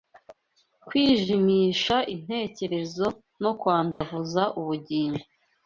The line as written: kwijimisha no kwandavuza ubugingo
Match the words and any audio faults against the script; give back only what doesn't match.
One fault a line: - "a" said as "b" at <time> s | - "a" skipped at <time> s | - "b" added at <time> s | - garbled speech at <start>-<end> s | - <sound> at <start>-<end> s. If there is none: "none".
- "intekerezo" added at 2.1 s
- dropout at 3.9-4.0 s